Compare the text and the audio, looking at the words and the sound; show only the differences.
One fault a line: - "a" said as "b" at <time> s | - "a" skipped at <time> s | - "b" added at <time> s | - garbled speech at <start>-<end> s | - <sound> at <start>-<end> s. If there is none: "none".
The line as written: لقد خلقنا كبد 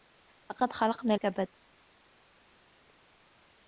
none